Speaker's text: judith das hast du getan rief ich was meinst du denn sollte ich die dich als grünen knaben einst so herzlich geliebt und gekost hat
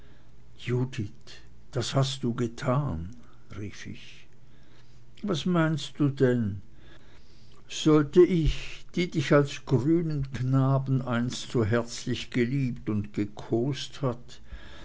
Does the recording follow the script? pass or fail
pass